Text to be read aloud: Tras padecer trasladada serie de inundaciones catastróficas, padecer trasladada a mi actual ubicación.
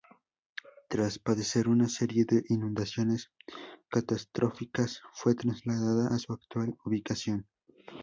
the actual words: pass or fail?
fail